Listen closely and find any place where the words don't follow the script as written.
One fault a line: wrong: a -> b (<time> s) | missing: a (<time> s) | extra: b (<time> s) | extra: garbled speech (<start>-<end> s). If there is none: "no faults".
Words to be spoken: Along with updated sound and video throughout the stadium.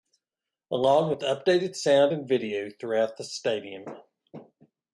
no faults